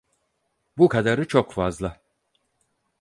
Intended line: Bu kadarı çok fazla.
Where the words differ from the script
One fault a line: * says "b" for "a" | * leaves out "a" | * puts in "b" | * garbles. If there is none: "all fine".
all fine